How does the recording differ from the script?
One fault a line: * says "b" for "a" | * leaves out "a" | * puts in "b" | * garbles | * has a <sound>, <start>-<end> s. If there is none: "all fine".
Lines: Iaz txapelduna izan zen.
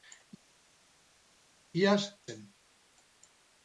* leaves out "txapelduna izan"